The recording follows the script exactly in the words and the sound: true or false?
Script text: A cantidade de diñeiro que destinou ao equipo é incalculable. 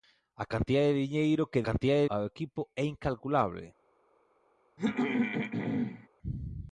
false